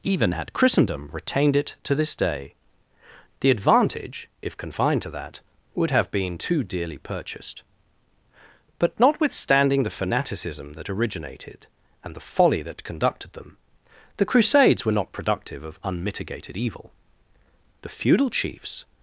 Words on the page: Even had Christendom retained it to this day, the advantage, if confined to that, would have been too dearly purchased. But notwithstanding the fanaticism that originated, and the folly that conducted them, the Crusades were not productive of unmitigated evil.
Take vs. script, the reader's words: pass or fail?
fail